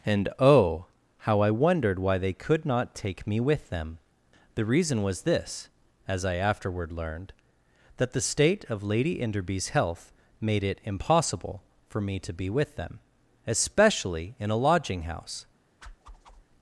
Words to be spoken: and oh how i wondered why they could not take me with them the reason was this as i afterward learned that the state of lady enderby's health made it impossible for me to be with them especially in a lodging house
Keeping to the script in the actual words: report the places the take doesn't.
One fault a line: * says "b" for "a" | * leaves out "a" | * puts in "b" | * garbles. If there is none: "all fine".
all fine